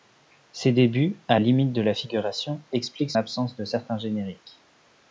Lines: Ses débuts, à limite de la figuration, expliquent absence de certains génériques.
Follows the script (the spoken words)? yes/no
yes